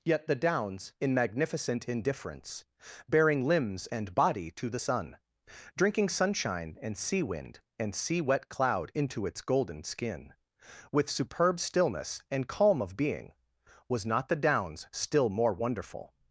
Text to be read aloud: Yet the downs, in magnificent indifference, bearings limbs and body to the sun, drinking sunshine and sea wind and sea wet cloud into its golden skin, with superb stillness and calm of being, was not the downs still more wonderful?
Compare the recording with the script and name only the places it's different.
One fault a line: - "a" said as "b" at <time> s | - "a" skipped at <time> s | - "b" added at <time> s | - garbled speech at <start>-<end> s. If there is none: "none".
- "bearings" said as "bearing" at 3.1 s